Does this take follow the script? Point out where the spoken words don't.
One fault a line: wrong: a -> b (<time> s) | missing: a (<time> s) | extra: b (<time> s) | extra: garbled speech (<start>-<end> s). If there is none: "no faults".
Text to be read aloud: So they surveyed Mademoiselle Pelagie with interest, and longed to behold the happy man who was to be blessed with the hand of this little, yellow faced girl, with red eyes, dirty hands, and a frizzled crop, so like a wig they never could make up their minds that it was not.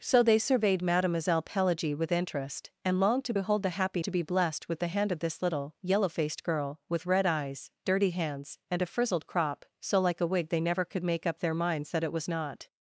missing: man who was (4.0 s)